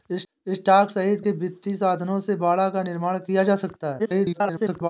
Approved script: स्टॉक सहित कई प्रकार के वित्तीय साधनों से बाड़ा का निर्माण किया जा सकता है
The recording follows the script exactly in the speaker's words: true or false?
false